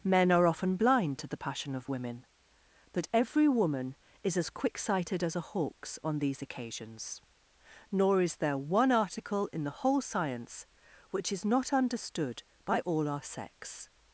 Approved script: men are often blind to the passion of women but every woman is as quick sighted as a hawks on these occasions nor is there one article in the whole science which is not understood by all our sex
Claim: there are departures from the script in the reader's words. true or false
false